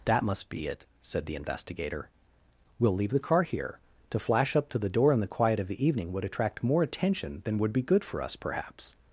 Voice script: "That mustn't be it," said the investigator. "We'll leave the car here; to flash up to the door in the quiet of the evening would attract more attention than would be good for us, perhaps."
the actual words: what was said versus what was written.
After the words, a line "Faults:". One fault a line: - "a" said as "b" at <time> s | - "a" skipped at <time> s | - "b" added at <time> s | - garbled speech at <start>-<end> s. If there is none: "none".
"That must be it," said the investigator. "We'll leave the car here; to flash up to the door in the quiet of the evening would attract more attention than would be good for us, perhaps."
Faults:
- "mustn't" said as "must" at 0.2 s